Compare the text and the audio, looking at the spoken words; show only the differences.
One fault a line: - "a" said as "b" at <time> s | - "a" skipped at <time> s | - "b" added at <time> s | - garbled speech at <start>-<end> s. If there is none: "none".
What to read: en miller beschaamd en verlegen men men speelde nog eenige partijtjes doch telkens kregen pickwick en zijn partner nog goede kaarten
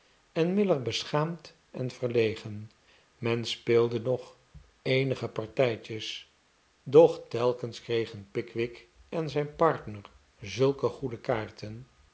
- "men" skipped at 3.5 s
- "nog" said as "zulke" at 10.4 s